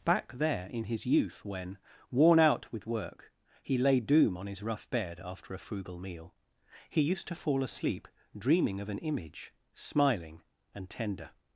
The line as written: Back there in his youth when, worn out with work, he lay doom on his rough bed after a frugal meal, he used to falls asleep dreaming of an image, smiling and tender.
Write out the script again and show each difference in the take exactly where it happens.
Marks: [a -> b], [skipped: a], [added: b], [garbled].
Back there in his youth when, worn out with work, he lay doom on his rough bed after a frugal meal, he used to [falls -> fall] asleep dreaming of an image, smiling and tender.